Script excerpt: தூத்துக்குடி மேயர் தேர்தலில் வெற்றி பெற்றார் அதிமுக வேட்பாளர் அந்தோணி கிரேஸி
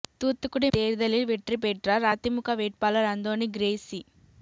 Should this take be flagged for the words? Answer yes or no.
yes